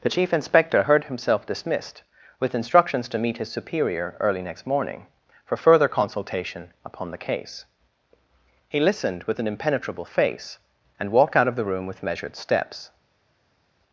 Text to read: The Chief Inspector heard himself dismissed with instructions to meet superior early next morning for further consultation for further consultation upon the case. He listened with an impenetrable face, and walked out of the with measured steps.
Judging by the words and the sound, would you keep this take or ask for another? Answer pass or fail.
fail